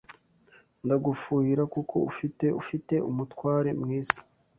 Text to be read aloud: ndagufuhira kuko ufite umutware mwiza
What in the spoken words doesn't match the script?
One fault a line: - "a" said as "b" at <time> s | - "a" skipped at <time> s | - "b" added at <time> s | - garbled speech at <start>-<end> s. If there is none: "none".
- "ufite" added at 2.6 s